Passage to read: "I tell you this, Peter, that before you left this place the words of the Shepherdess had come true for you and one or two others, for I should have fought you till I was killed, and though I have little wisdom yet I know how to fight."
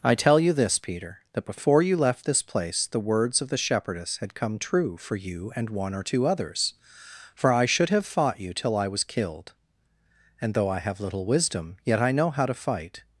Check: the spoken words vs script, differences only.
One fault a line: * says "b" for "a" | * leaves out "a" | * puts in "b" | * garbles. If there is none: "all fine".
all fine